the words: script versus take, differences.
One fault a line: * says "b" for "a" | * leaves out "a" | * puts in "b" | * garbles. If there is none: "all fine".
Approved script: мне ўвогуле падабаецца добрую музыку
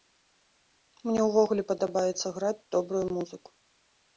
* puts in "граць"